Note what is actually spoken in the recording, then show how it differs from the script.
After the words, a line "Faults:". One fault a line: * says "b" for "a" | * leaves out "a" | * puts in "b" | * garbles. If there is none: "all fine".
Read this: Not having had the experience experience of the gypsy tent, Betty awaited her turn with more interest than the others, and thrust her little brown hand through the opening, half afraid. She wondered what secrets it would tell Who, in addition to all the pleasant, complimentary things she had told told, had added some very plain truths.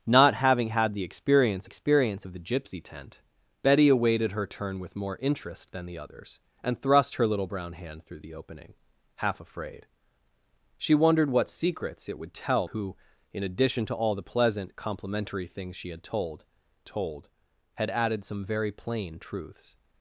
Not having had the experience experience of the gypsy tent, Betty awaited her turn with more interest than the others, and thrust her little brown hand through the opening, half afraid. She wondered what secrets it would tell Who, in addition to all the pleasant, complimentary things she had told told, had added some very plain truths.
Faults:
all fine